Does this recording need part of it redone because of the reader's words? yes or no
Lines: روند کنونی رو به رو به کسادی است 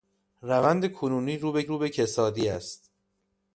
no